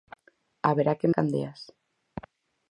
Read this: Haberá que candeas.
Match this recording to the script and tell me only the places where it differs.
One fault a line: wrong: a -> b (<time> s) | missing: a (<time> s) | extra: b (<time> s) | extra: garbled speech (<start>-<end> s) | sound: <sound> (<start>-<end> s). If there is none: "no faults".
no faults